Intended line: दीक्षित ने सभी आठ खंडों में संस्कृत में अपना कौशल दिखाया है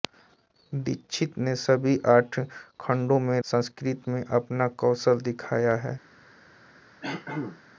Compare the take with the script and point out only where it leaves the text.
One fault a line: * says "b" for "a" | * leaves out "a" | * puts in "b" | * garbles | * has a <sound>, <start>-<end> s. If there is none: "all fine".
* has a throat clearing, 7.0-7.6 s